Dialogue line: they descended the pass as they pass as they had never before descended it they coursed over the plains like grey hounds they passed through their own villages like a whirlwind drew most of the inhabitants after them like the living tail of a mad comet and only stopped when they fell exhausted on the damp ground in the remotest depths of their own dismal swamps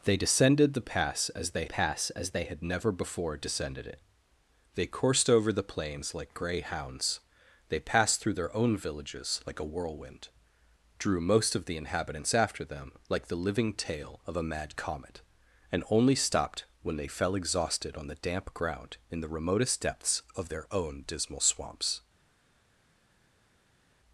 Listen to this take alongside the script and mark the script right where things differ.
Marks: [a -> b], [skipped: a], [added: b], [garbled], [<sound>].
they descended the pass as they pass as they had never before descended it they coursed over the plains like grey hounds they passed through their own villages like a whirlwind drew most of the inhabitants after them like the living tail of a mad comet and only stopped when they fell exhausted on the damp ground in the remotest depths of their own dismal swamps